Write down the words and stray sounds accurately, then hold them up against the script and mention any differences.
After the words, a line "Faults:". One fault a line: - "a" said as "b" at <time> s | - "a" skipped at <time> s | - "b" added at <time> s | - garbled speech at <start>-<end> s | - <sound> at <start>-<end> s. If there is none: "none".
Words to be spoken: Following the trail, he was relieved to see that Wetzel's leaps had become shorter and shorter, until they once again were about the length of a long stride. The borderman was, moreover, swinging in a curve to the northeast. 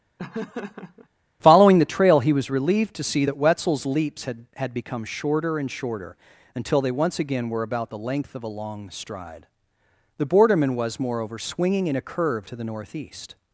Following the trail, he was relieved to see that Wetzel's leaps had had become shorter and shorter, until they once again were about the length of a long stride. The borderman was, moreover, swinging in a curve to the northeast.
Faults:
- laugh at 0.2-1.1 s
- "had" added at 4.6 s